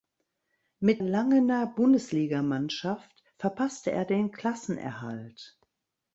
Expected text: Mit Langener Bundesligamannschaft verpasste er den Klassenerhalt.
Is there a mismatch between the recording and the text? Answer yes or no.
no